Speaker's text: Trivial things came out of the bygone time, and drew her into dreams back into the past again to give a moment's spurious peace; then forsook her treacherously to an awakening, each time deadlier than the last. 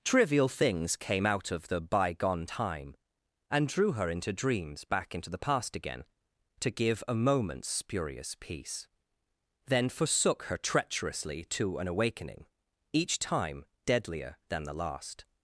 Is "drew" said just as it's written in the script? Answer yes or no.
yes